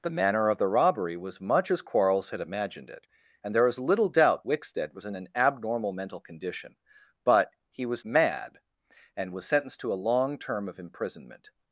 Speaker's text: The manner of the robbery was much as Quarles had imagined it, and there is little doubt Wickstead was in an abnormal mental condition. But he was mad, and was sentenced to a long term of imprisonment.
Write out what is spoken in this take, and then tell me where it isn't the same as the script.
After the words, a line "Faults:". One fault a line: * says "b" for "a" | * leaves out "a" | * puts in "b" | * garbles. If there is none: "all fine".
The manner of the robbery was much as Quarles had imagined it, and there is little doubt Wickstead was in an abnormal mental condition. But he was mad, and was sentenced to a long term of imprisonment.
Faults:
all fine